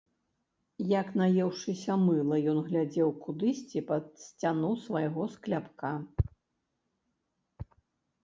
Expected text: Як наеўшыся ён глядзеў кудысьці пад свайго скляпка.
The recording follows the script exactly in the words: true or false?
false